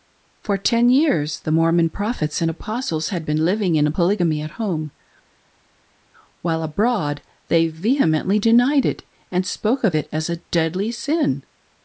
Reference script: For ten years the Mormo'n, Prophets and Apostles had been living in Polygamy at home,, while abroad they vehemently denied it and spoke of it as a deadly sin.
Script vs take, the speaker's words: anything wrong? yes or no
no